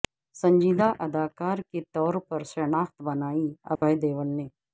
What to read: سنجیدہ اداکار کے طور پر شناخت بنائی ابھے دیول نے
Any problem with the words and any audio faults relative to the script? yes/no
yes